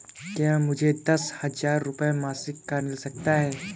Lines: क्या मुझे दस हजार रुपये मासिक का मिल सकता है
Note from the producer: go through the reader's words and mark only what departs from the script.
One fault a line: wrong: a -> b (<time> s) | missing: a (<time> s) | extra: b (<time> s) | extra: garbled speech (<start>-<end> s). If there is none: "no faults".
no faults